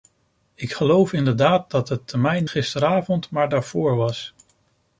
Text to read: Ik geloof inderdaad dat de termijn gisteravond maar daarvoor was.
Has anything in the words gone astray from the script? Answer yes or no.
no